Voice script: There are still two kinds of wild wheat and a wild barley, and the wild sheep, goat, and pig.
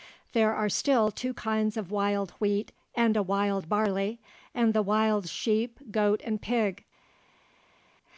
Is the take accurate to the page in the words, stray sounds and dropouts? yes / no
yes